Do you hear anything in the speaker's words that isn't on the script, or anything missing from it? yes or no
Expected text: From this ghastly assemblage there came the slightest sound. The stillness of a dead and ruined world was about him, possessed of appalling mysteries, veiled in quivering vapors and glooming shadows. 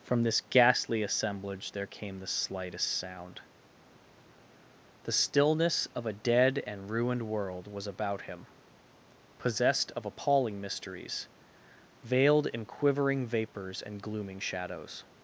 no